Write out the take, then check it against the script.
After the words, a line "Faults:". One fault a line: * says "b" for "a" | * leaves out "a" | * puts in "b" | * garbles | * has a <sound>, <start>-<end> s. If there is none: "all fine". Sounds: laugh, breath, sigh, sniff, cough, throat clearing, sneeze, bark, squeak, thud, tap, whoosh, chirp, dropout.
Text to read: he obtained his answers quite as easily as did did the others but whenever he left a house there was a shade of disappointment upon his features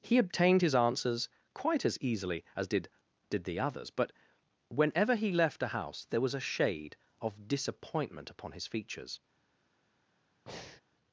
he obtained his answers quite as easily as did did the others but whenever he left a house there was a shade of disappointment upon his features
Faults:
* has a breath, 10.5-10.8 s